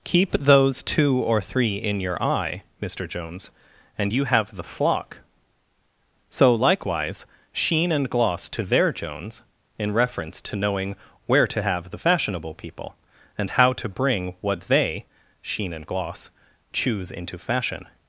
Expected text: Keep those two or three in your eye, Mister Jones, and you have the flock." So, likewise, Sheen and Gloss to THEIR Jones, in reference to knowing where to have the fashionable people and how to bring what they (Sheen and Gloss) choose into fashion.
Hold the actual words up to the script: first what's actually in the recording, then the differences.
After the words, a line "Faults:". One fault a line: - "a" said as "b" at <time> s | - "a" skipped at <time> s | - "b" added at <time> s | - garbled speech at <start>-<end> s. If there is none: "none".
Keep those two or three in your eye, Mister Jones, and you have the flock." So, likewise, Sheen and Gloss to THEIR Jones, in reference to knowing where to have the fashionable people and how to bring what they (Sheen and Gloss) choose into fashion.
Faults:
none